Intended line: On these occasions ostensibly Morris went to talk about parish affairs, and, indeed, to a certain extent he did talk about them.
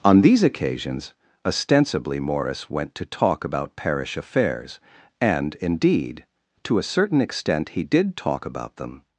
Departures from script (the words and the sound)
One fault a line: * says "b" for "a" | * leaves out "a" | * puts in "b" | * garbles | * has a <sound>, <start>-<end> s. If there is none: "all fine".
all fine